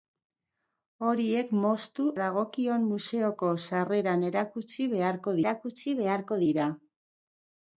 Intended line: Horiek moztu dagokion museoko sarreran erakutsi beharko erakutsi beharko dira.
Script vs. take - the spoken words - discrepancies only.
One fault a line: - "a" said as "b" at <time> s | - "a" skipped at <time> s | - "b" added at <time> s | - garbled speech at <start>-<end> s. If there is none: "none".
none